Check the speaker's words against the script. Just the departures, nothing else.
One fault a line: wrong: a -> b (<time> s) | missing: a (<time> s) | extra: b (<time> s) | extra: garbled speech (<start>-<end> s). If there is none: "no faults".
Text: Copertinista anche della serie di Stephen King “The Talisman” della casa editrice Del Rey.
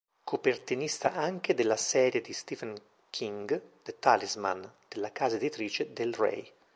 no faults